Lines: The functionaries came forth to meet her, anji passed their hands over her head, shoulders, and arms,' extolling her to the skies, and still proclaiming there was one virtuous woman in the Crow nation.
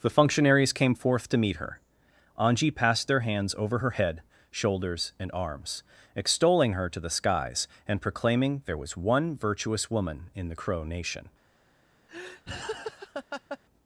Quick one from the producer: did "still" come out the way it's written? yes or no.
no